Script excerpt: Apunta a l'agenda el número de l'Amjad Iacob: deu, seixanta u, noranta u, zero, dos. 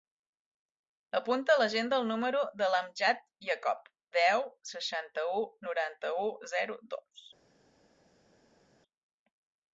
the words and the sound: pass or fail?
pass